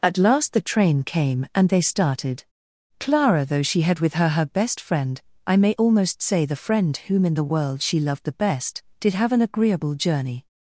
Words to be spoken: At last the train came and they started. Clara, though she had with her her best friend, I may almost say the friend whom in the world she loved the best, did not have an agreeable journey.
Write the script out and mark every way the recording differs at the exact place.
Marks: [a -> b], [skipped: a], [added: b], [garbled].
At last the train came and they started. Clara, though she had with her her best friend, I may almost say the friend whom in the world she loved the best, did [skipped: not] have an agreeable journey.